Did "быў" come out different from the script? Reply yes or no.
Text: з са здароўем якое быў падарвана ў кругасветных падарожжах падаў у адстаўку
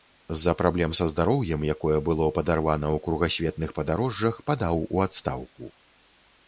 yes